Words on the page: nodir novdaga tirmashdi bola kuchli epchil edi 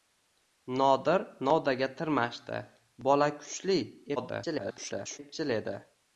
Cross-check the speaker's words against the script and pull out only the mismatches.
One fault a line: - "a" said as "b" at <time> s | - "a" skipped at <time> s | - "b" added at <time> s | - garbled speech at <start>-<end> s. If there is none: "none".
- garbled speech at 4.2-5.2 s